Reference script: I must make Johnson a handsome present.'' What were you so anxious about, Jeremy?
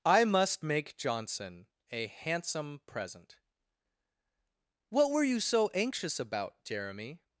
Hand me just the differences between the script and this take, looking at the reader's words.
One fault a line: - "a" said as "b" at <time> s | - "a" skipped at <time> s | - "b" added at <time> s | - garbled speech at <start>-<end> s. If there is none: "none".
none